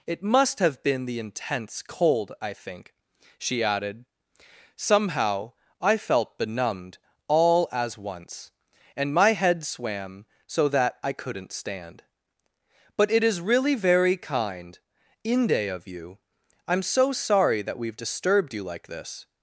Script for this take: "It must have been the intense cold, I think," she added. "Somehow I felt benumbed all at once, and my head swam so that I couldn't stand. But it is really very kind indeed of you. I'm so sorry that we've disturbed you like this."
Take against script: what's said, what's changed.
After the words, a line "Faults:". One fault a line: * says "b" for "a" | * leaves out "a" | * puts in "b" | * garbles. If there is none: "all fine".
"It must have been the intense cold, I think," she added. "Somehow I felt benumbed all as once, and my head swam so that I couldn't stand. But it is really very kind inde of you. I'm so sorry that we've disturbed you like this."
Faults:
* says "as" for "at"
* says "inde" for "indeed"